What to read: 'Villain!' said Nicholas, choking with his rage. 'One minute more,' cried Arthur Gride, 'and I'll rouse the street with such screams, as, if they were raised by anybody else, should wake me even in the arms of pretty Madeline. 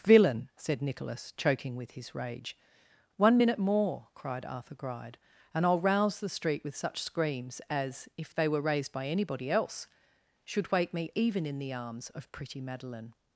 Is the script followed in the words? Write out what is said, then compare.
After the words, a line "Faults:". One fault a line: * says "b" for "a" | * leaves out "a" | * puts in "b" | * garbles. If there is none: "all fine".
'Villain!' said Nicholas, choking with his rage. 'One minute more,' cried Arthur Gride, 'and I'll rouse the street with such screams, as, if they were raised by anybody else, should wake me even in the arms of pretty Madeline.
Faults:
all fine